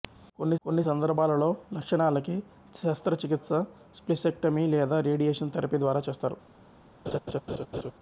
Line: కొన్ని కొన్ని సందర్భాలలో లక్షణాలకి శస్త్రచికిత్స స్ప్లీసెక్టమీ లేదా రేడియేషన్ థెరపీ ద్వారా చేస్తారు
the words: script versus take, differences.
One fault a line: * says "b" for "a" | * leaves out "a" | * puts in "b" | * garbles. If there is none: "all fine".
all fine